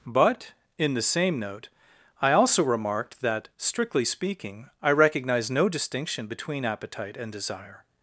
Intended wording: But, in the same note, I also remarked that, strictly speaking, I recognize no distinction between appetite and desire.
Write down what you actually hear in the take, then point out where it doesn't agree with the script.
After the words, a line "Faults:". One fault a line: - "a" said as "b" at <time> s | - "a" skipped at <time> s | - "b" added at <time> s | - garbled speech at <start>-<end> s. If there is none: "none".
But, in the same note, I also remarked that, strictly speaking, I recognize no distinction between appetite and desire.
Faults:
none